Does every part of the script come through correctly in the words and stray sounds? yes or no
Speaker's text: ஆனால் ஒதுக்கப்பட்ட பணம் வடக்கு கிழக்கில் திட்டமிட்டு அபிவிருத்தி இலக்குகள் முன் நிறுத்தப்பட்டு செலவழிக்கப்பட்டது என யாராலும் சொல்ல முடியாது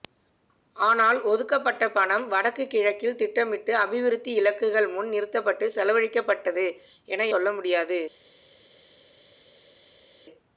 no